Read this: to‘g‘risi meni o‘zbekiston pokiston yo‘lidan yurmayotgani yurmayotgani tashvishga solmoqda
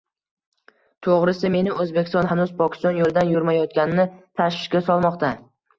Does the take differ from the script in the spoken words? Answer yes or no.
yes